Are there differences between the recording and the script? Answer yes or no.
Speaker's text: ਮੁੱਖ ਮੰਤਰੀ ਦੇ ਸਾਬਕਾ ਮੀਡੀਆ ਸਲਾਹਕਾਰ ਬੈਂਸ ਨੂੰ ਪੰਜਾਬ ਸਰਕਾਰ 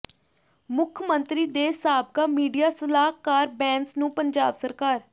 no